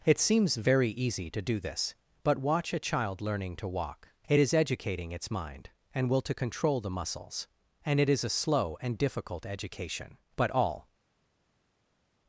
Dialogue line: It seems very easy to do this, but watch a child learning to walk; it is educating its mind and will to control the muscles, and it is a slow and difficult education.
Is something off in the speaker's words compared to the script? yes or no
yes